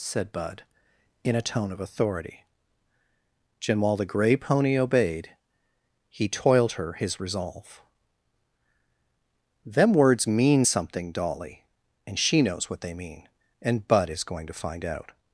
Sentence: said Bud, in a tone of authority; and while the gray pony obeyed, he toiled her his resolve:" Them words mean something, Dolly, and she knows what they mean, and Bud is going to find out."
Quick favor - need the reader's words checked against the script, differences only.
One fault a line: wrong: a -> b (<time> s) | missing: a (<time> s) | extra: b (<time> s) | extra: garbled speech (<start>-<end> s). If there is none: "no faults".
no faults